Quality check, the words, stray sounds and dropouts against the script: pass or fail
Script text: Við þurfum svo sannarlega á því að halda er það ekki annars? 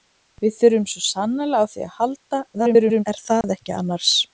fail